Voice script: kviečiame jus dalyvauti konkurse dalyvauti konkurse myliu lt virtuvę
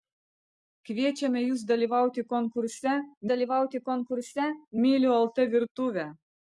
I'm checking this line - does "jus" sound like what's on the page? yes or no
yes